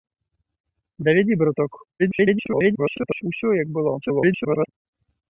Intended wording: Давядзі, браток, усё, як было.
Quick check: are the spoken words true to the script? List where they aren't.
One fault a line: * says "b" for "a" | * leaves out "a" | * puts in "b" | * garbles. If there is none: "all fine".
* garbles
* garbles